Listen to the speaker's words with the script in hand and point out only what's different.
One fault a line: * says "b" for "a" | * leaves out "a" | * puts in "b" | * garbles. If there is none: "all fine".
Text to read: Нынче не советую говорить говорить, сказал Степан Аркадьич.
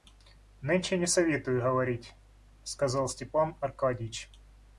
* leaves out "говорить"